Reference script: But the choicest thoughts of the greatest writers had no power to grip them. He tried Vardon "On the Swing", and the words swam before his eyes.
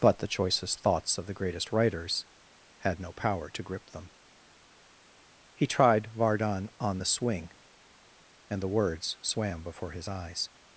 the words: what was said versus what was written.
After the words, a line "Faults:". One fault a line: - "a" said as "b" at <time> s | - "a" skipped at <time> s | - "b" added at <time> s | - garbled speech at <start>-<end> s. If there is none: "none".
But the choicest thoughts of the greatest writers had no power to grip them. He tried Vardon "On the Swing", and the words swam before his eyes.
Faults:
none